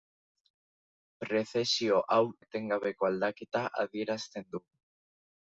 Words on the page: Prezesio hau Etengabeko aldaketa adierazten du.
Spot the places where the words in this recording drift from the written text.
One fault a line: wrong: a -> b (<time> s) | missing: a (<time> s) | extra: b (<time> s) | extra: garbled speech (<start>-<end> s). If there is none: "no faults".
no faults